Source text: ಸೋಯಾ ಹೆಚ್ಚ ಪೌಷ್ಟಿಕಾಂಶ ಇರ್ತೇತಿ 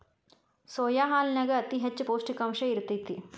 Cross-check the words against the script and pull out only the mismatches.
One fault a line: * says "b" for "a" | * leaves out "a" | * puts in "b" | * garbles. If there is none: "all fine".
* puts in "ಹಾಲನ್ಯಾಗ ಅತಿ"